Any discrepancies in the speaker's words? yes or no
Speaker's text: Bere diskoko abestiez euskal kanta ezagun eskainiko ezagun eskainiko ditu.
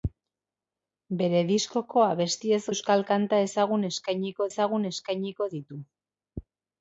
no